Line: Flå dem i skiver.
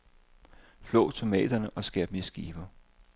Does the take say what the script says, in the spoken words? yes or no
no